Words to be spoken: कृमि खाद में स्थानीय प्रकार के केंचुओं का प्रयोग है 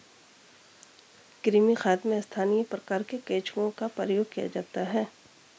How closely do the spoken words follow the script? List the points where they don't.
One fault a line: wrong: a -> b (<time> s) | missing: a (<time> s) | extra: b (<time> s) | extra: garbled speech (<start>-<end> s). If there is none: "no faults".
extra: किया जाता (4.3 s)